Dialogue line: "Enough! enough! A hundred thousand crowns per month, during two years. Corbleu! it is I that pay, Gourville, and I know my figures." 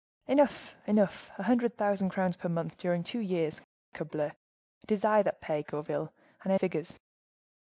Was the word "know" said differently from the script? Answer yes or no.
yes